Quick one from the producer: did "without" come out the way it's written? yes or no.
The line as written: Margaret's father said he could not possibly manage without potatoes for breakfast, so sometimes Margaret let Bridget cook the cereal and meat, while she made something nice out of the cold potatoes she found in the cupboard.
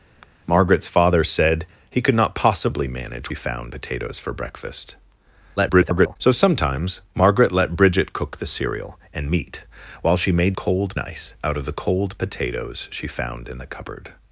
no